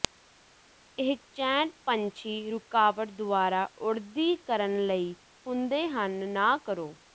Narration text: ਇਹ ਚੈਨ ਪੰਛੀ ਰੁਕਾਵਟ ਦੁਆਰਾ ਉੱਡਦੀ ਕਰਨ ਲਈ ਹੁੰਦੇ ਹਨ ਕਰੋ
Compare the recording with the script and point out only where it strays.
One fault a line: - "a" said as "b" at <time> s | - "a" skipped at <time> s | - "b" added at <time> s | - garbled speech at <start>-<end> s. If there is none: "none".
- "ਨਾ" added at 6.3 s